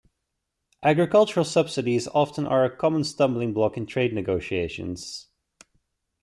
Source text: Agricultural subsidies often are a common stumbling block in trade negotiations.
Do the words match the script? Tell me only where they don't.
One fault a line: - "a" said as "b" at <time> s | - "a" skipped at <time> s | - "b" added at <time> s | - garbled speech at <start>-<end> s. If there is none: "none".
none